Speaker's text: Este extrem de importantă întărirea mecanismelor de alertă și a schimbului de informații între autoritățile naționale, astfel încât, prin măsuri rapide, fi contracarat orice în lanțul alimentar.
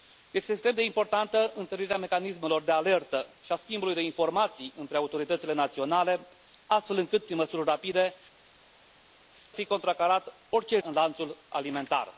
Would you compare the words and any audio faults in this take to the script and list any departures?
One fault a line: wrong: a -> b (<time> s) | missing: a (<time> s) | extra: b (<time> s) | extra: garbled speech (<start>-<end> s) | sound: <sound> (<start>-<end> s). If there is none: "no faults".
no faults